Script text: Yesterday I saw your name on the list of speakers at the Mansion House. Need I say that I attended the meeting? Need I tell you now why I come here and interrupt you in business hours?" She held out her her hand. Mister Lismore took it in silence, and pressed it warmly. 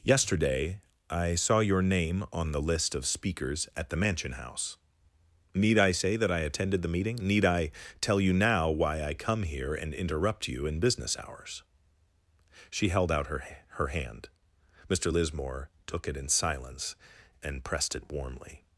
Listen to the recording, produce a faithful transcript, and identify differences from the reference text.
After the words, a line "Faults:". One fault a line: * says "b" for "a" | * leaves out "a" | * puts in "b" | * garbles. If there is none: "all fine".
Yesterday I saw your name on the list of speakers at the Mansion House. Need I say that I attended the meeting? Need I tell you now why I come here and interrupt you in business hours?" She held out her her hand. Mister Lismore took it in silence, and pressed it warmly.
Faults:
all fine